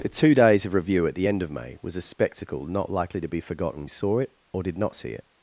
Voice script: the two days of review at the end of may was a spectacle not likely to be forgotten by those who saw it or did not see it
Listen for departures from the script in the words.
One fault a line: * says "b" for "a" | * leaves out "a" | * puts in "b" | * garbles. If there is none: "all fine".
* leaves out "by those who"